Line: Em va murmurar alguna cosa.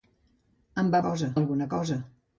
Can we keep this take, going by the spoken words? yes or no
no